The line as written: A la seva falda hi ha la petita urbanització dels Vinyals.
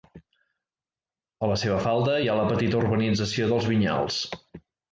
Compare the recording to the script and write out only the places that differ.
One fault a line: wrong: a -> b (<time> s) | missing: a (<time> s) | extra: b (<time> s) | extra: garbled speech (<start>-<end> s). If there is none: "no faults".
no faults